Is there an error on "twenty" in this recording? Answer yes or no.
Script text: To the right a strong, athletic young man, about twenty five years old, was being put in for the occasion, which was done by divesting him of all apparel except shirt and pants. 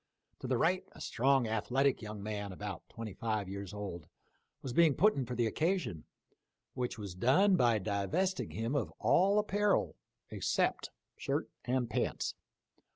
no